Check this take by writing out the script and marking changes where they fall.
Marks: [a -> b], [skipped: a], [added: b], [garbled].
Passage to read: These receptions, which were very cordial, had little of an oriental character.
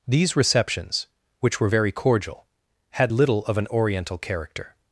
These receptions, which were very cordial, had little of an oriental character.